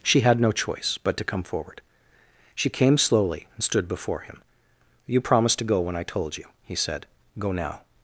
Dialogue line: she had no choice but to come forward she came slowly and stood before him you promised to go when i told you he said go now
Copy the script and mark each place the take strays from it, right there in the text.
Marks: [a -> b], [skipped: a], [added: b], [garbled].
she had no choice but to come forward she came slowly and stood before him you promised to go when i told you he said go now